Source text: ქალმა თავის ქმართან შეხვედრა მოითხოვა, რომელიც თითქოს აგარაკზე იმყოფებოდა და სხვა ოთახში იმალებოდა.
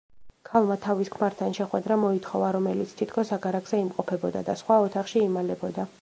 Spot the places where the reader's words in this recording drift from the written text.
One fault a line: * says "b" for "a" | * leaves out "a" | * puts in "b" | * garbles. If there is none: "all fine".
all fine